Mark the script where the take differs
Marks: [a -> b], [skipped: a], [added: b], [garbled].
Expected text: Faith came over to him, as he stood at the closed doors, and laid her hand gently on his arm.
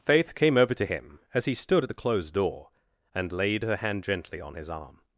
Faith came over to him, as he stood at the closed [doors, -> door] and laid her hand gently on his arm.